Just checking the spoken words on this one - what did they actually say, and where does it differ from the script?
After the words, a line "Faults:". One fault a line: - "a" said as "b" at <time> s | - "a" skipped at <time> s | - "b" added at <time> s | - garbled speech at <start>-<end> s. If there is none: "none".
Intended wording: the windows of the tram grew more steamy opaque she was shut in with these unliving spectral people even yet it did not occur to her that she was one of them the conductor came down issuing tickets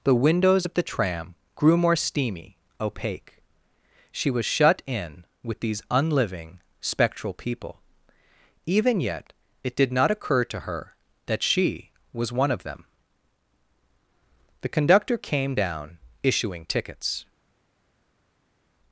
the windows of the tram grew more steamy opaque she was shut in with these unliving spectral people even yet it did not occur to her that she was one of them the conductor came down issuing tickets
Faults:
none